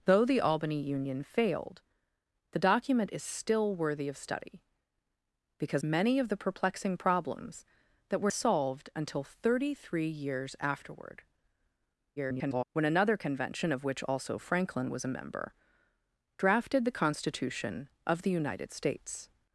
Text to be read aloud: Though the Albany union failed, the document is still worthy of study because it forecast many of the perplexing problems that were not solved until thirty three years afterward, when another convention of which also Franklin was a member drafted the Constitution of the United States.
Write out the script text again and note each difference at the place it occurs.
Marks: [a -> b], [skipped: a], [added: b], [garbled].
Though the Albany union failed, the document is still worthy of study because [skipped: it forecast] many of the perplexing problems that were [skipped: not] solved until thirty three years afterward, [garbled] when another convention of which also Franklin was a member drafted the Constitution of the United States.